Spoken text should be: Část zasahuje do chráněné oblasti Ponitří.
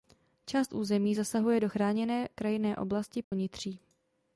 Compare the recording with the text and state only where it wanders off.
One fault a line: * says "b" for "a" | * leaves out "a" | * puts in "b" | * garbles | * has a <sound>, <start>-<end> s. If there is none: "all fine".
* puts in "území"
* puts in "krajinné"
* has a dropout, 3.2-3.3 s